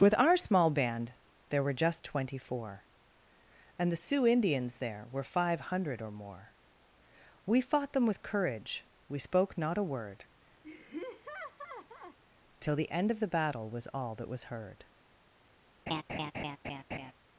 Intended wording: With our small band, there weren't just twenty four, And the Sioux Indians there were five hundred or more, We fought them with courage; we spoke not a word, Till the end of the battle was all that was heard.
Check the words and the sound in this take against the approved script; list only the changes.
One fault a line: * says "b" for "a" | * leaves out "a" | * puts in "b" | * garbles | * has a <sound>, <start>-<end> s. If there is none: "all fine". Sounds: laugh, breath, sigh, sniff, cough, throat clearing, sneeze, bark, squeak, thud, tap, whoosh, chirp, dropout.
* says "were" for "weren't"
* has a laugh, 10.6-12.2 s
* has a laugh, 15.9-17.1 s